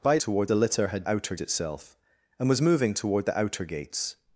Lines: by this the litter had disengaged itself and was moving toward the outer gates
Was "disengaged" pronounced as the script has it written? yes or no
no